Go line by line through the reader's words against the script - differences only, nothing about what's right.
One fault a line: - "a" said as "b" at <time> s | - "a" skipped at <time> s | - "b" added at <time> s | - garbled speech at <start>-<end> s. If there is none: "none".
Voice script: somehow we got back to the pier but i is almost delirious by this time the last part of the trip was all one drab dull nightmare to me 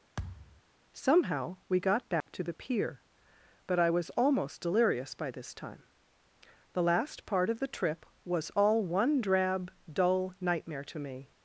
- "is" said as "was" at 3.9 s